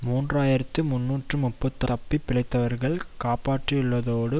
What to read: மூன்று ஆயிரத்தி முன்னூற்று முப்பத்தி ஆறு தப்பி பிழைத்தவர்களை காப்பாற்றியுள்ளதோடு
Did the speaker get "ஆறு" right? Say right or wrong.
wrong